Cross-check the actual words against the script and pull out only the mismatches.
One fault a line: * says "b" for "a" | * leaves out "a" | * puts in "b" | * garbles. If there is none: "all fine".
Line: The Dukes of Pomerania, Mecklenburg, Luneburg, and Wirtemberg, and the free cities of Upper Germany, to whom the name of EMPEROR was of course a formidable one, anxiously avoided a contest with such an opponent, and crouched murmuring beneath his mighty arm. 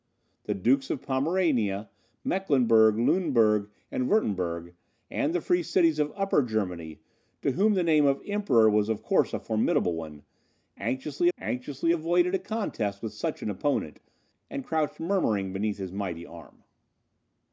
* puts in "anxiously"